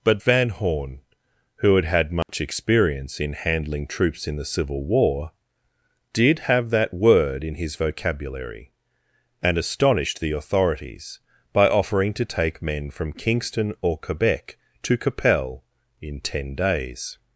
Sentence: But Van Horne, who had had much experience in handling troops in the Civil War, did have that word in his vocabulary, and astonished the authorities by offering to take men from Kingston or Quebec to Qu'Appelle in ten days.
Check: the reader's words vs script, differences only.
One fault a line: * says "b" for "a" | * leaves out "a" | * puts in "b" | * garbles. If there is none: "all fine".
all fine